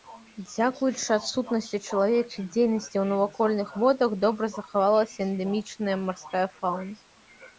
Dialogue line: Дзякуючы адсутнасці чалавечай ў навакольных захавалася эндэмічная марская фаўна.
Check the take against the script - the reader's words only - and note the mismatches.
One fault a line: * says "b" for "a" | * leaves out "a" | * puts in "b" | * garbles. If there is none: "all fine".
* puts in "дзейнасці"
* puts in "водах добра"